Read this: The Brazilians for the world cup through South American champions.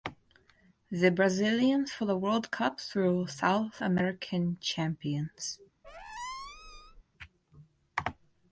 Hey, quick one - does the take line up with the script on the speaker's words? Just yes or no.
yes